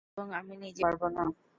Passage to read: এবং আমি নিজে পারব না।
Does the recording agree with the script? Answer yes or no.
yes